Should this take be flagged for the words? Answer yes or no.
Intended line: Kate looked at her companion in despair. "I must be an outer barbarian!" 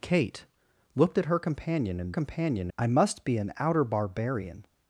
yes